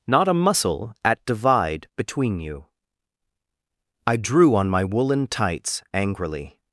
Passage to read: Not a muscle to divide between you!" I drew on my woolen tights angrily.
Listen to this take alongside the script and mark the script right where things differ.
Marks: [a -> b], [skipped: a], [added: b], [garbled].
Not a muscle [to -> at] divide between you!" I drew on my woolen tights angrily.